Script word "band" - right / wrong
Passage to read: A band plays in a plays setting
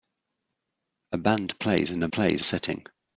right